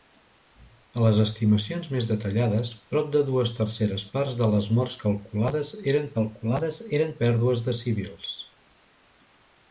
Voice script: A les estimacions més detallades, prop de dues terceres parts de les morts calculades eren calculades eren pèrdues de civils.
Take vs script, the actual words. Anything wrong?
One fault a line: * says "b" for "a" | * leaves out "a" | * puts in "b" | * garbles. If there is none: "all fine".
all fine